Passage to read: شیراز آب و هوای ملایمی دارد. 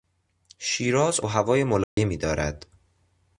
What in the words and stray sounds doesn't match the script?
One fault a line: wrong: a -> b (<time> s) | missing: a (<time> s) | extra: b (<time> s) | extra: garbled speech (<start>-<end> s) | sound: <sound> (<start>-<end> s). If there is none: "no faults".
missing: آب (1.2 s)
sound: dropout (1.8-2.0 s)